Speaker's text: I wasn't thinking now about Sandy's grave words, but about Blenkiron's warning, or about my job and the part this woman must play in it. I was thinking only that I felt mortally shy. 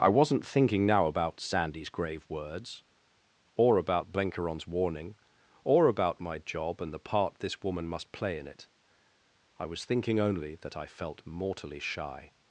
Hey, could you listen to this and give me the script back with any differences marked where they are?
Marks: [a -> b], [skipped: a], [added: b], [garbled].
I wasn't thinking now about Sandy's grave words, [but -> or] about Blenkiron's warning, or about my job and the part this woman must play in it. I was thinking only that I felt mortally shy.